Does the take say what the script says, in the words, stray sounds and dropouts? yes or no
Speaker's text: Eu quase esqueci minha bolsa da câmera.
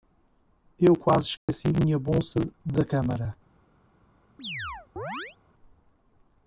no